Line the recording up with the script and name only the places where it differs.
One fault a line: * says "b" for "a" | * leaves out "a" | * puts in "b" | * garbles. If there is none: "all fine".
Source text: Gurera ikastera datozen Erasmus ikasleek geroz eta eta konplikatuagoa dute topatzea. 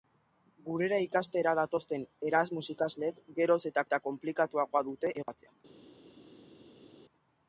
all fine